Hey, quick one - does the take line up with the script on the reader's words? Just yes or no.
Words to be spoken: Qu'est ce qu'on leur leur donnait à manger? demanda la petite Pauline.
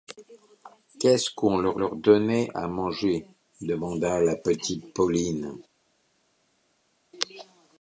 yes